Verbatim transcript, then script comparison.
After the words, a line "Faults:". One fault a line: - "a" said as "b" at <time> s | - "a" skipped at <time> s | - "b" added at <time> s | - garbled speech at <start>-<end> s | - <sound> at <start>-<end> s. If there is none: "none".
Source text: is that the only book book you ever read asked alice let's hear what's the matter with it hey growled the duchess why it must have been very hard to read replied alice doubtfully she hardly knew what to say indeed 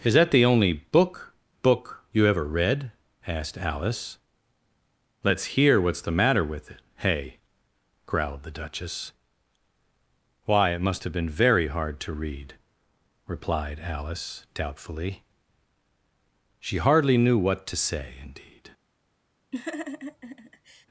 is that the only book book you ever read asked alice let's hear what's the matter with it hey growled the duchess why it must have been very hard to read replied alice doubtfully she hardly knew what to say indeed
Faults:
- laugh at 19.5-20.9 s